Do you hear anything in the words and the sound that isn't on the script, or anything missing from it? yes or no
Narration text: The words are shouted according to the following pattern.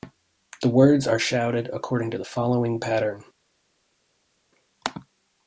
no